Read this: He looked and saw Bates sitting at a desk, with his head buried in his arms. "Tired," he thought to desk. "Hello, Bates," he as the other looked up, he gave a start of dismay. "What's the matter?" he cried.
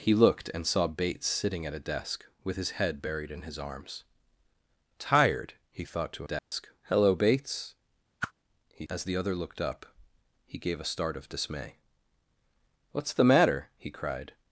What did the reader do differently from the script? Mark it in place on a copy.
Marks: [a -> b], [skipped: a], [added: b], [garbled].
He looked and saw Bates sitting at a desk, with his head buried in his arms. "Tired," he thought to desk. "Hello, Bates," he as the other looked up, he gave a start of dismay. "What's the matter?" he cried.